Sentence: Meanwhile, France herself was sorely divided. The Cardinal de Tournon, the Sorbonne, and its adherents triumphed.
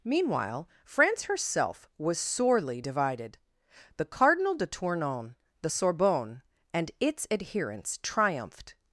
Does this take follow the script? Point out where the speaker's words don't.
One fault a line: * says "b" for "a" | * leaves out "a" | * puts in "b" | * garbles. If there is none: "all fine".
all fine